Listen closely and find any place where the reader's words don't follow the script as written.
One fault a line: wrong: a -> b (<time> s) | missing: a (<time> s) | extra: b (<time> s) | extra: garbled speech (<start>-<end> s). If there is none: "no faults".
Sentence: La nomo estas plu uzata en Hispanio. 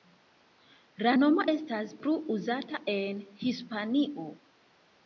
no faults